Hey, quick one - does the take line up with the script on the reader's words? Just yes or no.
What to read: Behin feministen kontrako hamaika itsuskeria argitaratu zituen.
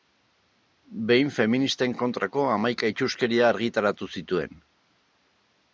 yes